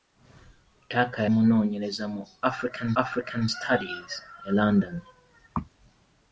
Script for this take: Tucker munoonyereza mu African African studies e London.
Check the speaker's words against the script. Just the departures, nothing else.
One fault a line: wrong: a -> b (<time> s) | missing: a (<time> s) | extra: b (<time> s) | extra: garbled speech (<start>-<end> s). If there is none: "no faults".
no faults